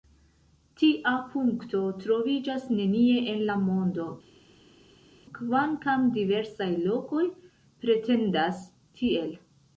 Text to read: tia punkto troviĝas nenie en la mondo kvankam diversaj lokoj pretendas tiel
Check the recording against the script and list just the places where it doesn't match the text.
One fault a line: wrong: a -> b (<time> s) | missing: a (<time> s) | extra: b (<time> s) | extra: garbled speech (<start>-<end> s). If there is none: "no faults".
no faults